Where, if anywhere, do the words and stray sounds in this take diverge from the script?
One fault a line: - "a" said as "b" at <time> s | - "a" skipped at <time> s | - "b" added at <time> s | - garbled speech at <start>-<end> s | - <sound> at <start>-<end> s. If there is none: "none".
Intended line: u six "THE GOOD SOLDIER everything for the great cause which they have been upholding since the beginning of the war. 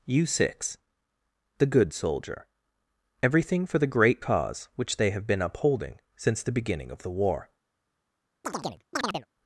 - chirp at 8.4-9.3 s